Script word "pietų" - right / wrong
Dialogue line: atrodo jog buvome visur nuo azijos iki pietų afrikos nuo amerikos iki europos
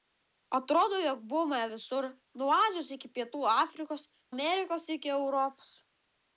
right